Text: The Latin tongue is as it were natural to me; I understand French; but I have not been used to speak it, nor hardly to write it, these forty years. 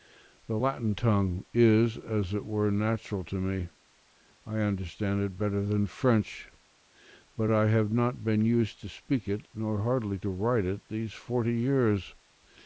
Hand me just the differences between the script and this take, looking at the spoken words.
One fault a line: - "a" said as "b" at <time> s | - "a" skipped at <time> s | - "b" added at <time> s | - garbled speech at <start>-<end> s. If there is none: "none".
- "it better than" added at 5.2 s